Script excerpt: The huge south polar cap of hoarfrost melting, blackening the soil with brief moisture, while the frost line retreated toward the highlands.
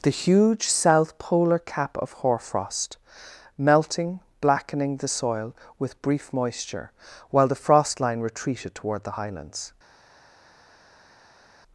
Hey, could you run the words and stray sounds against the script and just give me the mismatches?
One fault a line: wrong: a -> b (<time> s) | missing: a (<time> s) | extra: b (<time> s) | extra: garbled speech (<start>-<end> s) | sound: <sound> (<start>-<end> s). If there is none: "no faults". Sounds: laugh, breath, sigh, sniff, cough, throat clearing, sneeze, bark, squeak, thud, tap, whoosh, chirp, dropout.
no faults